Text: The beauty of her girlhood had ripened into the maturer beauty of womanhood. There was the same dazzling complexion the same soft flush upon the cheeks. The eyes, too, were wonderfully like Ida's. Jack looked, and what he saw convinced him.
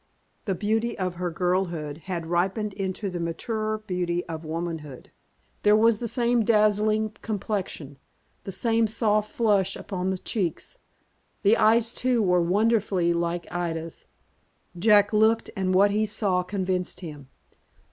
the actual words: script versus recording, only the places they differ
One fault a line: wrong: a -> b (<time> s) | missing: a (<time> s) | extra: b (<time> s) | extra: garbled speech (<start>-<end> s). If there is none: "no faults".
no faults